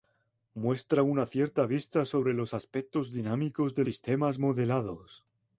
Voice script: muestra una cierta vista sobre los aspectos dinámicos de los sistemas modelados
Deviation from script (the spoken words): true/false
true